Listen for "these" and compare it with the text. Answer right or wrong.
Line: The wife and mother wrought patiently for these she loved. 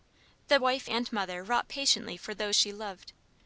wrong